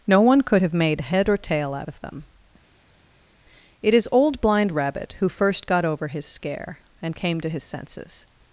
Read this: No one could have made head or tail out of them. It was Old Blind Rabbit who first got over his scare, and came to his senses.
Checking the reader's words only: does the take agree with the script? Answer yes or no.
no